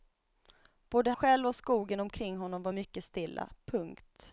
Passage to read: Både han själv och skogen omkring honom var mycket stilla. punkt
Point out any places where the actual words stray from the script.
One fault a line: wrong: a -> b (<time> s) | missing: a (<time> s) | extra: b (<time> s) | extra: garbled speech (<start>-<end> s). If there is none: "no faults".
missing: han (1.1 s)